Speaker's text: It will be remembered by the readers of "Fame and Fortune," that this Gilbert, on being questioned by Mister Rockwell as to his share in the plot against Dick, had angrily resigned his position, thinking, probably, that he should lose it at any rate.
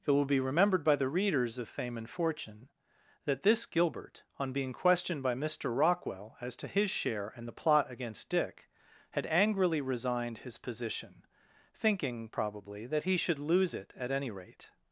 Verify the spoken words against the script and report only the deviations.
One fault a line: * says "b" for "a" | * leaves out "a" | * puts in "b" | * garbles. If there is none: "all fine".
all fine